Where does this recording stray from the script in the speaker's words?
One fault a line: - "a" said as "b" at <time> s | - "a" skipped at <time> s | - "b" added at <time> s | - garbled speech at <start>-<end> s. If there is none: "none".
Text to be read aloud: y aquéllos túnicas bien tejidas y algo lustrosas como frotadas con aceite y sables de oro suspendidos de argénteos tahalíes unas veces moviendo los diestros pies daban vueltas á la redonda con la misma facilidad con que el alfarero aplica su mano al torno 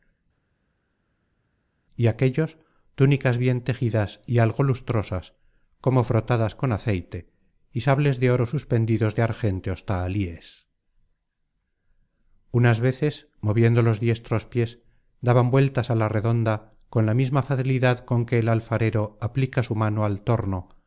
none